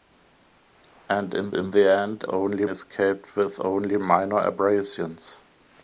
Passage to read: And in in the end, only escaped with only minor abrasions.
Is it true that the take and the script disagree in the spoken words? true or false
false